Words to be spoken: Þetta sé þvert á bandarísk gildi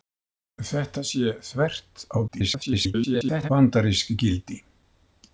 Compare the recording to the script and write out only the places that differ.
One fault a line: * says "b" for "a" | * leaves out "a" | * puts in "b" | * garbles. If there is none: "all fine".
* garbles